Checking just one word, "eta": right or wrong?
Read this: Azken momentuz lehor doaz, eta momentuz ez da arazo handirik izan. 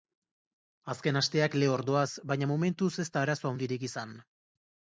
wrong